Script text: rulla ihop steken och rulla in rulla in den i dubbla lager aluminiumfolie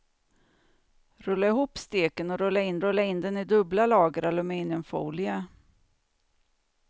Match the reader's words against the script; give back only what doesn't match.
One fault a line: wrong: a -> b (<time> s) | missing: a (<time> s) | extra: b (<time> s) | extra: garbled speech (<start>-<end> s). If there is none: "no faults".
no faults